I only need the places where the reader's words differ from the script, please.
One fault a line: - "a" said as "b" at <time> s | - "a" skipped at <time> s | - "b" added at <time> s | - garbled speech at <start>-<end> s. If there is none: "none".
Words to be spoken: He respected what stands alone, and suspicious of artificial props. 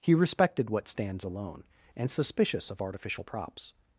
none